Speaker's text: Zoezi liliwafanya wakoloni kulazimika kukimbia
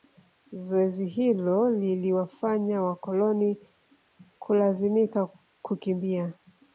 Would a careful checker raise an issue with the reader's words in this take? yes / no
yes